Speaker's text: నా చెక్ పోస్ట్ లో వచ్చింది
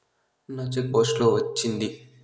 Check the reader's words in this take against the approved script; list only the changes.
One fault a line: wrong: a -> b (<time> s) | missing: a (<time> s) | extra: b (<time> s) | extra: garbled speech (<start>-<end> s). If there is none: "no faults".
no faults